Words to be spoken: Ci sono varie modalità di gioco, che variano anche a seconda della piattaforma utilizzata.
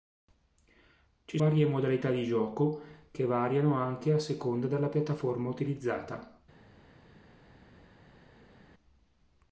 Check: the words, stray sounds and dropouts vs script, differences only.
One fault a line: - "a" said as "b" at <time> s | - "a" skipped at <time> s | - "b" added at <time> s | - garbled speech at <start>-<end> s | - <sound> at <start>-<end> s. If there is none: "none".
- "sono" skipped at 1.4 s